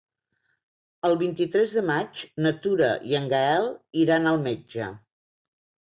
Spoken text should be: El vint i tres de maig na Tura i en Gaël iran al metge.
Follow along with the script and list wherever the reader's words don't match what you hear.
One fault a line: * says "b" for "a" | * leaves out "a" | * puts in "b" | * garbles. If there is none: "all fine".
all fine